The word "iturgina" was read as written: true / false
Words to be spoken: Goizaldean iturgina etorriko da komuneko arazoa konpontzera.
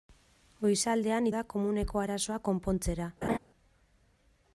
false